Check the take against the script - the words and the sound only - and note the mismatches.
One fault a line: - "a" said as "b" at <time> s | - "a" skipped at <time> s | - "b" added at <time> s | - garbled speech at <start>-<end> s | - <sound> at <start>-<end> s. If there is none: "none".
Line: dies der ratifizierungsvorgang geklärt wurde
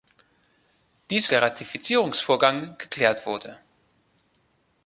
none